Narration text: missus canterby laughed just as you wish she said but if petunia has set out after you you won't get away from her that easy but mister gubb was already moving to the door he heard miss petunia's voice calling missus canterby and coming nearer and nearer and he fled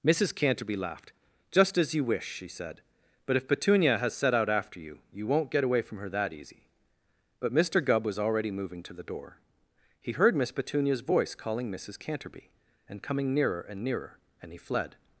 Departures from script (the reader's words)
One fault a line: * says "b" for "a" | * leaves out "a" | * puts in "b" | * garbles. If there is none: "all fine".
all fine